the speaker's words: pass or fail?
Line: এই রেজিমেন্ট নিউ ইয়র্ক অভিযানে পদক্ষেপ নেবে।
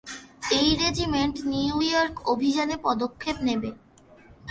pass